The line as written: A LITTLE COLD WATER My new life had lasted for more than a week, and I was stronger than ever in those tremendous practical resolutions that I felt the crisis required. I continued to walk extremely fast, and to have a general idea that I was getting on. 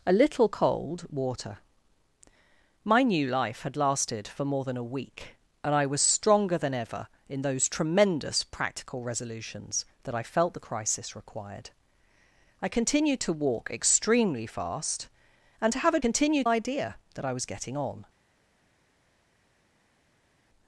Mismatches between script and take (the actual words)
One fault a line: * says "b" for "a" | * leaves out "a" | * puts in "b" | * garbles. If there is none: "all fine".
* says "continued" for "general"